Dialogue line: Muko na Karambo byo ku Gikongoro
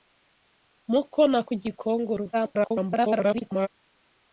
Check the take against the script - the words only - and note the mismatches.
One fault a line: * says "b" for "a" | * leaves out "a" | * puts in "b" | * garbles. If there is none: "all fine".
* leaves out "Karambo byo"
* garbles